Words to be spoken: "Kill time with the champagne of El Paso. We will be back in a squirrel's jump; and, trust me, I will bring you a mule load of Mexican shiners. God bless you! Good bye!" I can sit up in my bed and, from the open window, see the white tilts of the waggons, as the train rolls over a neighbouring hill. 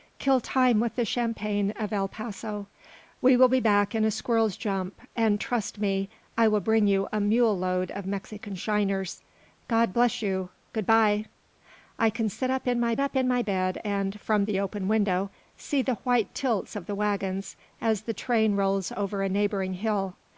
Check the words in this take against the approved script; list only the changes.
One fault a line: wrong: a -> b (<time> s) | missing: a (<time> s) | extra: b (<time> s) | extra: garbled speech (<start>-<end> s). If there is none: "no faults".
extra: up in my (13.0 s)